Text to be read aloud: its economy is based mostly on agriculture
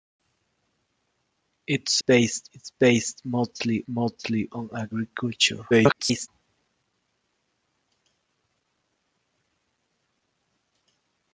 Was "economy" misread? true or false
true